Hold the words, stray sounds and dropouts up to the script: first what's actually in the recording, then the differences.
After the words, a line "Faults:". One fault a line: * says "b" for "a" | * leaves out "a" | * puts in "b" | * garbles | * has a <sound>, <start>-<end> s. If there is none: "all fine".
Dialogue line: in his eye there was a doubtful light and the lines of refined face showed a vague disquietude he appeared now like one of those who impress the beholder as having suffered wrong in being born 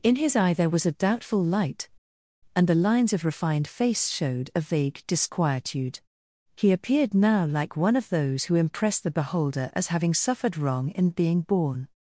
in his eye there was a doubtful light and the lines of refined face showed a vague disquietude he appeared now like one of those who impress the beholder as having suffered wrong in being born
Faults:
all fine